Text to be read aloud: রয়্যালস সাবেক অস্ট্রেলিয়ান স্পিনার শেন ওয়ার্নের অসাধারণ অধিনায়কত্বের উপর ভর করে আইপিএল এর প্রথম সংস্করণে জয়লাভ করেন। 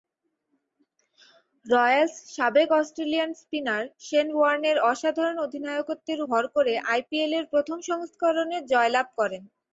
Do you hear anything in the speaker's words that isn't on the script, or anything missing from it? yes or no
yes